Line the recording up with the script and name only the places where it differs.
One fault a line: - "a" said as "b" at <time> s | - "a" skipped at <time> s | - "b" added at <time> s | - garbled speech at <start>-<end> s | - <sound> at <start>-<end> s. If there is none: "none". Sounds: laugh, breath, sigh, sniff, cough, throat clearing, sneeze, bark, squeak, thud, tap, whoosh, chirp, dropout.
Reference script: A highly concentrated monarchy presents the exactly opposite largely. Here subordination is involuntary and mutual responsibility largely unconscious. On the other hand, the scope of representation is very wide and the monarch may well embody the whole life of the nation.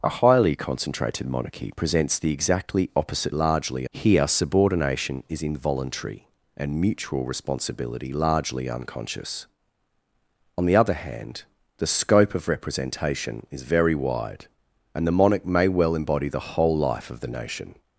none